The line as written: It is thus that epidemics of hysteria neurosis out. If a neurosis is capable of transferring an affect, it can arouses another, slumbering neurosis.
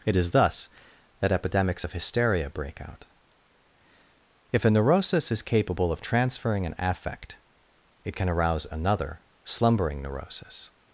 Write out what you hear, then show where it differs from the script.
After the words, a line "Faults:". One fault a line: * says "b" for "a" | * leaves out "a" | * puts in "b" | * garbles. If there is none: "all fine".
It is thus that epidemics of hysteria break out. If a neurosis is capable of transferring an affect, it can arouse another, slumbering neurosis.
Faults:
* says "break" for "neurosis"
* says "arouse" for "arouses"